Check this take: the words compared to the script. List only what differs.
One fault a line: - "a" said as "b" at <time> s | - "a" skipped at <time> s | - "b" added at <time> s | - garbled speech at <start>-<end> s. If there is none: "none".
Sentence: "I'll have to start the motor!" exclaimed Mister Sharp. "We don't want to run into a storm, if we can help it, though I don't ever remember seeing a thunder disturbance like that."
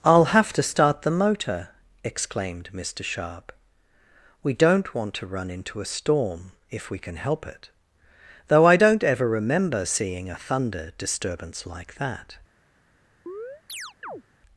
none